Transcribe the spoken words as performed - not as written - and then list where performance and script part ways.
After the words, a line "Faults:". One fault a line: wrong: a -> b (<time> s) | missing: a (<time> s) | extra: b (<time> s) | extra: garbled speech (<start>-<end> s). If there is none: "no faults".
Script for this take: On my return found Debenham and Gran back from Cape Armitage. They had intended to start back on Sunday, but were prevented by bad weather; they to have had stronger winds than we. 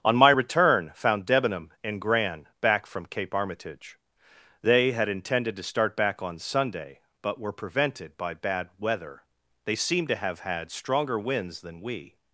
On my return found Debenham and Gran back from Cape Armitage. They had intended to start back on Sunday, but were prevented by bad weather; they seemed to have had stronger winds than we.
Faults:
extra: seemed (9.8 s)